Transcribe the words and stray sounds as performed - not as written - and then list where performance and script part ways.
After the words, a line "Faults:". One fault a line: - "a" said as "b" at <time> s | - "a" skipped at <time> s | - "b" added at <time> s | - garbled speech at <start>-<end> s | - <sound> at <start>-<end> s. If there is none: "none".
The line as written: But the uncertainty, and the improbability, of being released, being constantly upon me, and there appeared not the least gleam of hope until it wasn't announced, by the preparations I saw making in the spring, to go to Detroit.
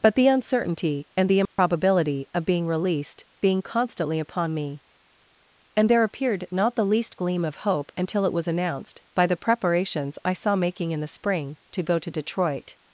But the uncertainty, and the improbability, of being released, being constantly upon me, and there appeared not the least gleam of hope until it was announced, by the preparations I saw making in the spring, to go to Detroit.
Faults:
- dropout at 1.5-1.6 s
- "wasn't" said as "was" at 8.3 s